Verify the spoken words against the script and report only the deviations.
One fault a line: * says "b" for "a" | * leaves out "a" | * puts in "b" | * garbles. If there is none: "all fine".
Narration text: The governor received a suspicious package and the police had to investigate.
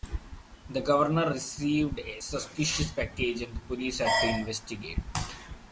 all fine